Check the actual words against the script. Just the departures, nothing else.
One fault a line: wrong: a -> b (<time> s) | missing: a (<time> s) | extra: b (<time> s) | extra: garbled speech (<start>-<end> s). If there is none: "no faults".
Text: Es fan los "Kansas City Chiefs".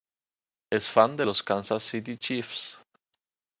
extra: de (1.1 s)